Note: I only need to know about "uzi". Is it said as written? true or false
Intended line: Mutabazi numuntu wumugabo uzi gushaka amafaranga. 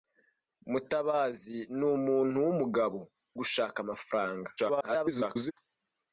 false